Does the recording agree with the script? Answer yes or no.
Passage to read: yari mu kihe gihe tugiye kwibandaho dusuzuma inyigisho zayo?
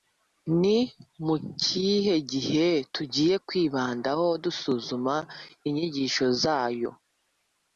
no